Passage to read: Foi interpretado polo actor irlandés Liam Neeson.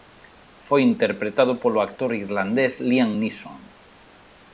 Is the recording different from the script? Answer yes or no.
no